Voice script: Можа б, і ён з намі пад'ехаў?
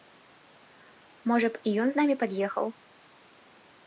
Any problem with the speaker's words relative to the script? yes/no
no